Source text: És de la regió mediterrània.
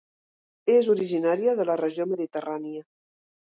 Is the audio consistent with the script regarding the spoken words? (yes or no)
no